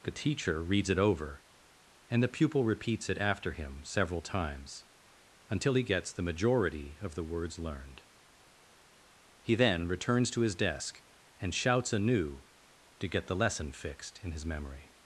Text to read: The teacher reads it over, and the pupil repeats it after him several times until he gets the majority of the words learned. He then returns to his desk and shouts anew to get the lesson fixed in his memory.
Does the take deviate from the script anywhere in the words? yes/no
no